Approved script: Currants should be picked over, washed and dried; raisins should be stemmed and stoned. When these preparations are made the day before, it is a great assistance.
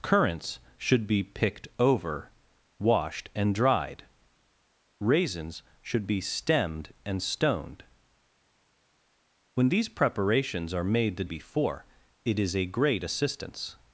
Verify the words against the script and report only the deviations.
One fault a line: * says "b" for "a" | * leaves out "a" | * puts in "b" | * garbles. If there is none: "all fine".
* leaves out "day"